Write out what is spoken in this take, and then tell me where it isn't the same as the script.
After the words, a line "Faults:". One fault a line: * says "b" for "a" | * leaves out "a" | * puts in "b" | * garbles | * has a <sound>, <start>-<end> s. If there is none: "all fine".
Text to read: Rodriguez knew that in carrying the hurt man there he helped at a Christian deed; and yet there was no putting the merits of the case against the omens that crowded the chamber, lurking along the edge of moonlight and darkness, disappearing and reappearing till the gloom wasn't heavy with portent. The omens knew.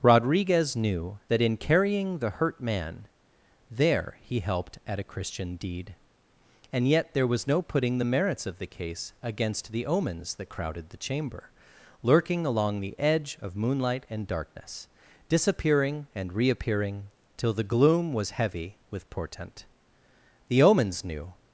Rodriguez knew that in carrying the hurt man there he helped at a Christian deed; and yet there was no putting the merits of the case against the omens that crowded the chamber, lurking along the edge of moonlight and darkness, disappearing and reappearing till the gloom was heavy with portent. The omens knew.
Faults:
* says "was" for "wasn't"